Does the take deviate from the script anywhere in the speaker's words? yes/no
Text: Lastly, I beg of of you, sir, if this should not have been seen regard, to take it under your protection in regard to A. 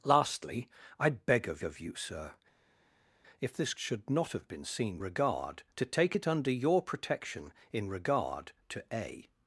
no